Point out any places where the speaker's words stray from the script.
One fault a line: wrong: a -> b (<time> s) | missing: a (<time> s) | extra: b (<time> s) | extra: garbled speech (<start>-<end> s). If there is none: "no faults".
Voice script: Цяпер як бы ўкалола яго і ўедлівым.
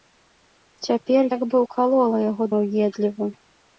no faults